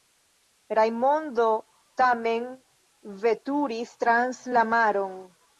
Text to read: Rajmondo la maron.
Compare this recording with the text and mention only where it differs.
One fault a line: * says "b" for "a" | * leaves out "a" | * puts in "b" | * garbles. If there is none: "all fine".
* puts in "tamen veturis trans"